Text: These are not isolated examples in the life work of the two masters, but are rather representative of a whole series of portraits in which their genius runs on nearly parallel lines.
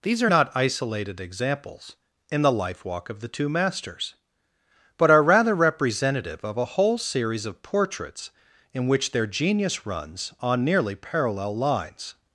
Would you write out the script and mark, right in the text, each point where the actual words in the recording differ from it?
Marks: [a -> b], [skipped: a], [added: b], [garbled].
These are not isolated examples in the life [work -> walk] of the two masters, but are rather representative of a whole series of portraits in which their genius runs on nearly parallel lines.